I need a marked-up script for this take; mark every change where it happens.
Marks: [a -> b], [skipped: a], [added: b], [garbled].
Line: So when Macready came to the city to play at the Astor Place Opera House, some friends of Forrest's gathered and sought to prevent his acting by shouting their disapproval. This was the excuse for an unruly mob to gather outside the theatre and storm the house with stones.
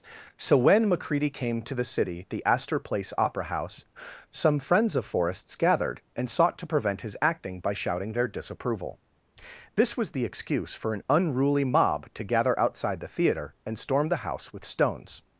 So when Macready came to the city [skipped: to play at] the Astor Place Opera House, some friends of Forrest's gathered and sought to prevent his acting by shouting their disapproval. This was the excuse for an unruly mob to gather outside the theatre and storm the house with stones.